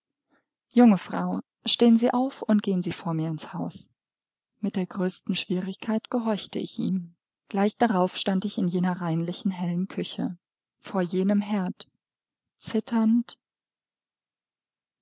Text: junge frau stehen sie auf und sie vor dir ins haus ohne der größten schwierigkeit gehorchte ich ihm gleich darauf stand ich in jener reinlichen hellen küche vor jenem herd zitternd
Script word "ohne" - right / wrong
wrong